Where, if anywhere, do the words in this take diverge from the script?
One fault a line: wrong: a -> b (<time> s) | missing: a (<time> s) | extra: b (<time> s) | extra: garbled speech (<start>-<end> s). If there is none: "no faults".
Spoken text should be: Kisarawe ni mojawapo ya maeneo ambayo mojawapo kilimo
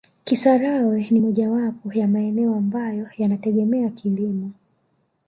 wrong: mojawapo -> yanategemea (3.2 s)